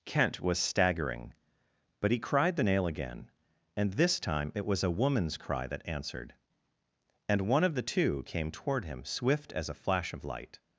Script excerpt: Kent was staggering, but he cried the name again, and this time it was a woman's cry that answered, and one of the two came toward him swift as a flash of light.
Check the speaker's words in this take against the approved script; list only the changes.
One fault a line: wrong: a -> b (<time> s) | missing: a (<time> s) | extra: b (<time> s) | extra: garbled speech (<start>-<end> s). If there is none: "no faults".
wrong: name -> nail (2.6 s)